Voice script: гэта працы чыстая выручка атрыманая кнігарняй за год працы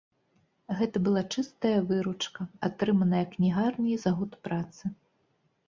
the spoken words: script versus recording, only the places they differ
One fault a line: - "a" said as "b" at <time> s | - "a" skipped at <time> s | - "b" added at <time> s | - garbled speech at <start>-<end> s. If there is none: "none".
- "працы" said as "была" at 1.1 s